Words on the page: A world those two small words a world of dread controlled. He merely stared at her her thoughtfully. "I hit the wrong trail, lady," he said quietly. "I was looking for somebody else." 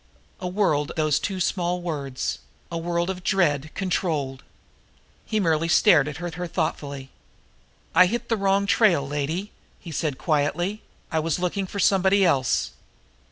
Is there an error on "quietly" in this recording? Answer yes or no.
no